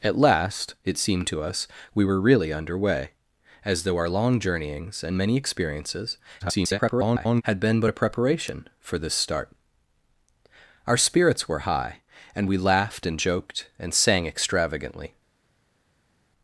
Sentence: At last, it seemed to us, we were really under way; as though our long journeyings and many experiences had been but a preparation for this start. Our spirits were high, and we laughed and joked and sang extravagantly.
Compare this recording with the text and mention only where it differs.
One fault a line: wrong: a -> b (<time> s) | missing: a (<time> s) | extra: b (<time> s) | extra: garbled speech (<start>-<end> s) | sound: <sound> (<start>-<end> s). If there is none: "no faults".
extra: garbled speech (6.4-7.4 s)